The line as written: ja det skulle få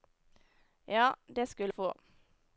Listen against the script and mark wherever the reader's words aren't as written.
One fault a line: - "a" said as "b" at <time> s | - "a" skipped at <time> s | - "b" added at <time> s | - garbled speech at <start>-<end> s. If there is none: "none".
none